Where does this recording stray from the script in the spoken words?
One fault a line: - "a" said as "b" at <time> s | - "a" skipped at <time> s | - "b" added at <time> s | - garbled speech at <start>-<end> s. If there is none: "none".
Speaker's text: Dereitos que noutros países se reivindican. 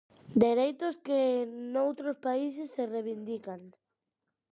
none